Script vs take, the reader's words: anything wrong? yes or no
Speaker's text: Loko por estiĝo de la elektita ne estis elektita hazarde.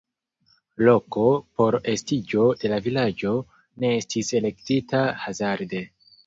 yes